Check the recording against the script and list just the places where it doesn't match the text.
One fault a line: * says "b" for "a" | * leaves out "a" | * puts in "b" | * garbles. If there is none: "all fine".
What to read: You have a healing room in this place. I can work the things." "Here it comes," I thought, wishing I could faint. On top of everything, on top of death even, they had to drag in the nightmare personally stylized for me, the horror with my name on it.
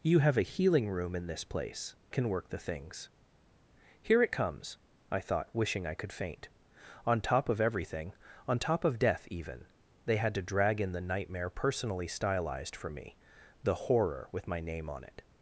* leaves out "I"